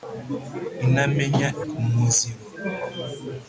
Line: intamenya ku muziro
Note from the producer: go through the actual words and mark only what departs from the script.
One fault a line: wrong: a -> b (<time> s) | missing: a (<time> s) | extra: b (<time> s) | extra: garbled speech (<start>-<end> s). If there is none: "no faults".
no faults